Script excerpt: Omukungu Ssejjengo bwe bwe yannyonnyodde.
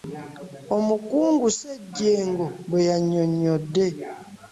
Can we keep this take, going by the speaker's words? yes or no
no